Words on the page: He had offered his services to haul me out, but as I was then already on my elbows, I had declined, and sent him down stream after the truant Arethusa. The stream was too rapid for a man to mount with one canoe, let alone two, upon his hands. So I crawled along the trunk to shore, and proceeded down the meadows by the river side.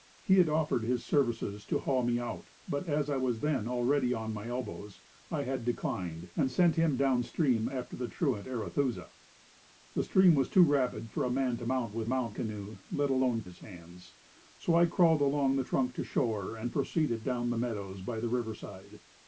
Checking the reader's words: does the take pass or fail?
fail